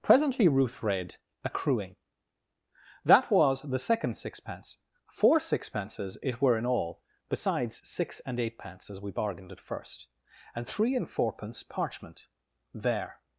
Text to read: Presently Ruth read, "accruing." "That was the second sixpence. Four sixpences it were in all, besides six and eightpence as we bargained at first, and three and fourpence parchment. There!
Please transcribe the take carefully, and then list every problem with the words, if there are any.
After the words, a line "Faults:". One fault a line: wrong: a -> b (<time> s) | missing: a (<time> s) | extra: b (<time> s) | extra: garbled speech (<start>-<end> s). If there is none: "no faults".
Presently Ruth read, "accruing." "That was the second sixpence. Four sixpences it were in all, besides six and eightpence as we bargained at first, and three and fourpence parchment. There!
Faults:
no faults